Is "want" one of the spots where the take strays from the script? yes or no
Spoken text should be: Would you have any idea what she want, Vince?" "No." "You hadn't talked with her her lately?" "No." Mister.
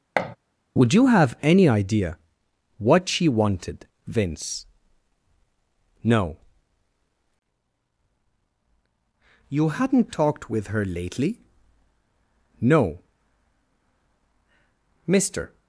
yes